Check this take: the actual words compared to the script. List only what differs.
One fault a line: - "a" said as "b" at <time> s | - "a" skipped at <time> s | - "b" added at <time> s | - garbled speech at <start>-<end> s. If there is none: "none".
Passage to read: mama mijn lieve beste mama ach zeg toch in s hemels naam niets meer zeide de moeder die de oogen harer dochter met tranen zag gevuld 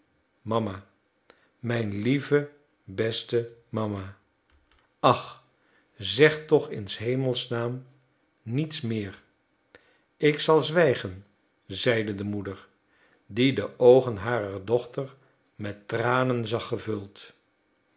- "ik zal zwijgen" added at 10.2 s